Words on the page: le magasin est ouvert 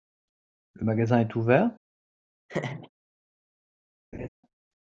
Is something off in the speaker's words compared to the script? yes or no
no